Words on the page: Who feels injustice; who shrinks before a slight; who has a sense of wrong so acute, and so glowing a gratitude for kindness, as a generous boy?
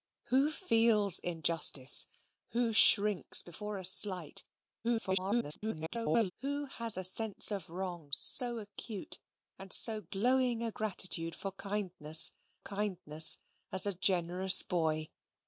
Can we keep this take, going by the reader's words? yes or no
no